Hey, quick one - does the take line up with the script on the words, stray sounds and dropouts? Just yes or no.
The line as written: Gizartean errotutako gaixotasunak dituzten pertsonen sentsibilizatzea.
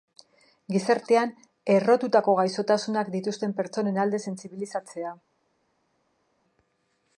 no